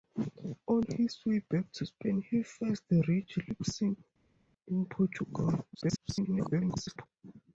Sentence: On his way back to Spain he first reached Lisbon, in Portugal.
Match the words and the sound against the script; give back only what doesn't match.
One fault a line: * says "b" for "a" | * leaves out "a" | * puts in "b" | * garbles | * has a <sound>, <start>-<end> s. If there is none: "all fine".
* garbles